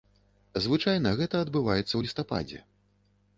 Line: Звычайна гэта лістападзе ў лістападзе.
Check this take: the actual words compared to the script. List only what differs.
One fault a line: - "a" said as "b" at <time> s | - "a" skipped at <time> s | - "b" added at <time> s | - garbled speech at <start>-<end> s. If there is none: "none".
- "лістападзе" said as "адбываецца" at 1.5 s